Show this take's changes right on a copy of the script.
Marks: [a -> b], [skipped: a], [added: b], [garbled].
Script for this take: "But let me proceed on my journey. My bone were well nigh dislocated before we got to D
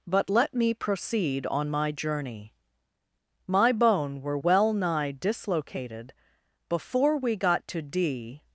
"But let me proceed on my journey. My bone were well nigh dislocated before we got to D